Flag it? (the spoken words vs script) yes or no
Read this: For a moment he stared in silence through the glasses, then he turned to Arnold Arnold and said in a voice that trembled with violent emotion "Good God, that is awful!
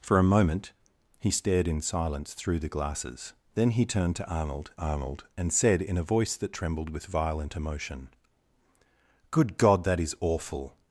no